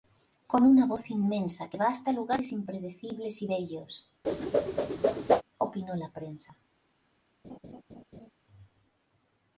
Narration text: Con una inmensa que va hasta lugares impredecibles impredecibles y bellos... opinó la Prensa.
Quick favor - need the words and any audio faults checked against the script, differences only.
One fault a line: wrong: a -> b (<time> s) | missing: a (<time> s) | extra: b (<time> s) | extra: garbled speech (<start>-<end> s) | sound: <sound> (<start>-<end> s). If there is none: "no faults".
extra: voz (0.9 s)
missing: impredecibles (3.4 s)
sound: whoosh (4.2-5.4 s)
sound: laugh (7.4-8.3 s)